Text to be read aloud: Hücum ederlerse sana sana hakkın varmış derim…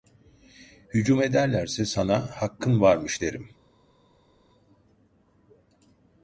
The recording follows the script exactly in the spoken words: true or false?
false